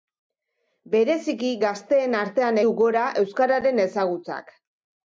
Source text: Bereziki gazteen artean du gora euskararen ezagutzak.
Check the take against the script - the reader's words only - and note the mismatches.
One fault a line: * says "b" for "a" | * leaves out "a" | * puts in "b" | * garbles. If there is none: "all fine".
all fine